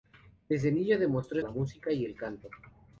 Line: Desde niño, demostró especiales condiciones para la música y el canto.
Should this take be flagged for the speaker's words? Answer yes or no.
yes